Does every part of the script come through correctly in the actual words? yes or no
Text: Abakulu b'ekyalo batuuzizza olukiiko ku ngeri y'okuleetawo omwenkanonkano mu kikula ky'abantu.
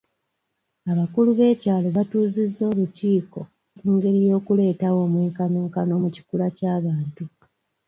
yes